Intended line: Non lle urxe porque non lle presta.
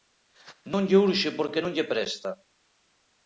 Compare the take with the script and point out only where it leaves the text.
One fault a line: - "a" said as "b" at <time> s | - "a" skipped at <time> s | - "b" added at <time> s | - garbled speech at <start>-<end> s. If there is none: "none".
none